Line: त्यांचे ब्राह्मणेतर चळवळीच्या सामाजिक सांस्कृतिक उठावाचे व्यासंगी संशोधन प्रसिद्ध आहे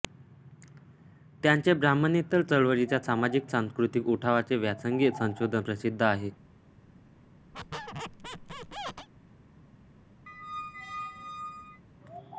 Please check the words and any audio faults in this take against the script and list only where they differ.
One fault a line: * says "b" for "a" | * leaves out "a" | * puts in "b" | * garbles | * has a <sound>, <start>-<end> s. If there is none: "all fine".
* has a squeak, 7.5-9.1 s
* has a squeak, 10.3-11.8 s